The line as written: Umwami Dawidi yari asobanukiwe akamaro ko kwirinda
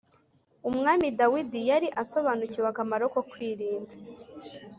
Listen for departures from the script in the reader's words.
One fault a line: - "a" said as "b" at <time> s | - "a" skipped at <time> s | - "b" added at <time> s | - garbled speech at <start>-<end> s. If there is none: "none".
none